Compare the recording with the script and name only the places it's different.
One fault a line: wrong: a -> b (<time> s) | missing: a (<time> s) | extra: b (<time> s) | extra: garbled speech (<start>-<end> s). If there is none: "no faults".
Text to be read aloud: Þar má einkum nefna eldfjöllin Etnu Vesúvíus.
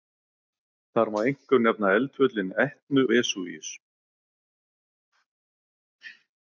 no faults